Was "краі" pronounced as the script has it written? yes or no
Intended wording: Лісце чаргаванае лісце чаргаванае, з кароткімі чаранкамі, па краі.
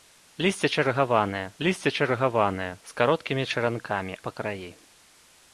yes